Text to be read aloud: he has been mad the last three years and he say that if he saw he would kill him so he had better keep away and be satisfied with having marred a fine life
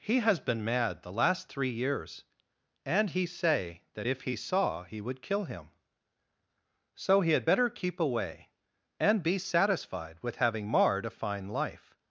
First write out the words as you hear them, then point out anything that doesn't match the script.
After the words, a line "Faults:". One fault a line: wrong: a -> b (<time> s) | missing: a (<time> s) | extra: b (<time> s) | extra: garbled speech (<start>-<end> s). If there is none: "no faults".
he has been mad the last three years and he say that if he saw he would kill him so he had better keep away and be satisfied with having marred a fine life
Faults:
no faults